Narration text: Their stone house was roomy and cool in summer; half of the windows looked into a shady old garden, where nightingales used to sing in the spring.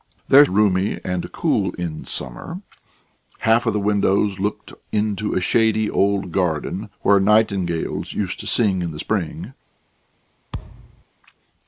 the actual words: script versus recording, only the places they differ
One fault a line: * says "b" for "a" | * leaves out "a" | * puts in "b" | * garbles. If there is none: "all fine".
* leaves out "stone house was"